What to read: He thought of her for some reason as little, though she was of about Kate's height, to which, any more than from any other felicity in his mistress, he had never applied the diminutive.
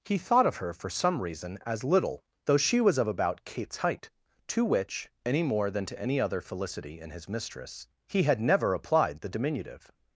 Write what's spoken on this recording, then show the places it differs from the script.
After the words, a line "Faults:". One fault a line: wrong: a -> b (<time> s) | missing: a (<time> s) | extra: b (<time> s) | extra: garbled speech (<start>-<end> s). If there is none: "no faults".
He thought of her for some reason as little, though she was of about Kate's height, to which, any more than to any other felicity in his mistress, he had never applied the diminutive.
Faults:
wrong: from -> to (5.8 s)